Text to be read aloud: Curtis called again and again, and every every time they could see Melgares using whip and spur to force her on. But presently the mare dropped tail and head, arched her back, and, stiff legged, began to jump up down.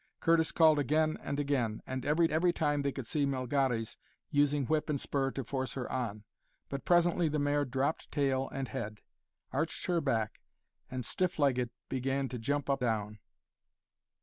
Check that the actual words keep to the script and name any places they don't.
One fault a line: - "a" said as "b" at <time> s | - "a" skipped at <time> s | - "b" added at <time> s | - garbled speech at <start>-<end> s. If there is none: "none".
none